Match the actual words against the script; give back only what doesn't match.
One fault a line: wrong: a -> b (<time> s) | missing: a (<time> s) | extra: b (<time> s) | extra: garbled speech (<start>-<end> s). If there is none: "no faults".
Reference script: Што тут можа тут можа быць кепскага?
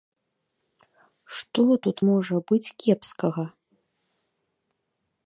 missing: тут можа (2.4 s)